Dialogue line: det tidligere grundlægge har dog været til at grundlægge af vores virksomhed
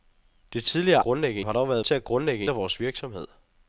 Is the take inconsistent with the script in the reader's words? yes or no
no